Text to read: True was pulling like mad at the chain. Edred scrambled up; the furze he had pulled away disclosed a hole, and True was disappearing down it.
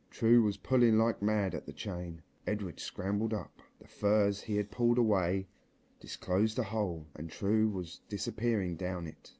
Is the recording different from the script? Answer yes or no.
no